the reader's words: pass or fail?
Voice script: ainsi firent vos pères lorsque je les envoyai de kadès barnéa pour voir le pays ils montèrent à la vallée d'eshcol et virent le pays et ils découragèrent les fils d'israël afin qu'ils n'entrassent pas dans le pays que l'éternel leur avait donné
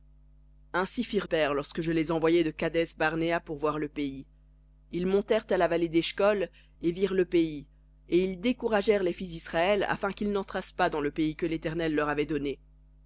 fail